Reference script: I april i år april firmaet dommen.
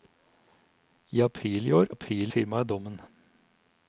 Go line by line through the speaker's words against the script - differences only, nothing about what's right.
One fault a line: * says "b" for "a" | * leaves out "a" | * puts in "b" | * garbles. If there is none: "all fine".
all fine